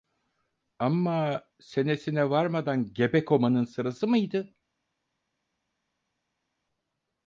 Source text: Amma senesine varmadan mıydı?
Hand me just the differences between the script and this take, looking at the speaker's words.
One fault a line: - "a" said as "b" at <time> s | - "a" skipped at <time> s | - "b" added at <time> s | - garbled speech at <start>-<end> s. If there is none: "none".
- "gebe komanın sırası" added at 2.9 s